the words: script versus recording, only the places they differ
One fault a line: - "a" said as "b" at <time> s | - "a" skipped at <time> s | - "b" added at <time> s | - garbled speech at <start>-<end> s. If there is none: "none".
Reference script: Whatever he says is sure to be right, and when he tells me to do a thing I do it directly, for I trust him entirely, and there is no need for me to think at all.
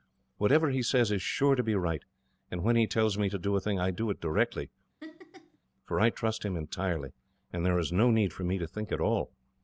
none